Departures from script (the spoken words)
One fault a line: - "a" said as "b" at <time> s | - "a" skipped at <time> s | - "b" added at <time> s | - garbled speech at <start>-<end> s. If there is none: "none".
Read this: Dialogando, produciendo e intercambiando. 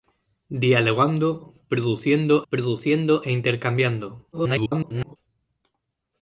- "produciendo" added at 2.5 s
- garbled speech at 4.3-5.2 s